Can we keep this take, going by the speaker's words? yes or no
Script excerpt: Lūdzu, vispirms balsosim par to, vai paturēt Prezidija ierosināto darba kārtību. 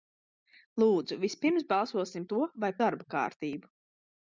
no